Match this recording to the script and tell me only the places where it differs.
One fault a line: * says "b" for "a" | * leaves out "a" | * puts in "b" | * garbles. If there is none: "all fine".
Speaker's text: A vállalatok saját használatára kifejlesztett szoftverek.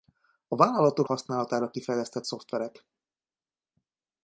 * leaves out "saját"